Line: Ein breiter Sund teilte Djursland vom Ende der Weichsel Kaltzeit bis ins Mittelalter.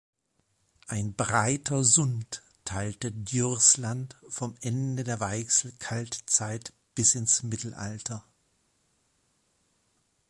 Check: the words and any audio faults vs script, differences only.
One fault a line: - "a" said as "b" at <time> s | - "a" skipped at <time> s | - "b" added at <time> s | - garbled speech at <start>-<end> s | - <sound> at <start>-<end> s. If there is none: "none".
none